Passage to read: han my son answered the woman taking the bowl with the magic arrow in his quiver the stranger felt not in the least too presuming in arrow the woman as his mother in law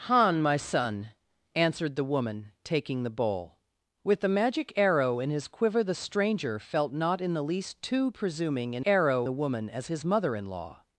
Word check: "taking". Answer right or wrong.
right